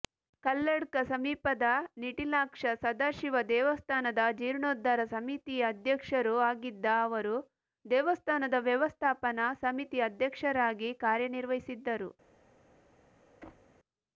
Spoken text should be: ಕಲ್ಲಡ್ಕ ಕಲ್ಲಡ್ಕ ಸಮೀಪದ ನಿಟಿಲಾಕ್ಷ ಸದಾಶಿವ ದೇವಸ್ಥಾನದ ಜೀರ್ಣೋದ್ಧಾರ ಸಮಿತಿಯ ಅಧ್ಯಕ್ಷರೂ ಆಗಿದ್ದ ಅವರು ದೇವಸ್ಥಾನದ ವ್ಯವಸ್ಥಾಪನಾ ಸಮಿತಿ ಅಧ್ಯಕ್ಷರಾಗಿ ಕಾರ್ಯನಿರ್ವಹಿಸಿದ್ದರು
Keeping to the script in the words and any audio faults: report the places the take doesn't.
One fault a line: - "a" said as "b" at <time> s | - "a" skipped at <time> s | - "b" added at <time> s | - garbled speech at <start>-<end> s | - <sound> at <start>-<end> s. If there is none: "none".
- "ಕಲ್ಲಡ್ಕ" skipped at 1.0 s
- thud at 13.4-13.8 s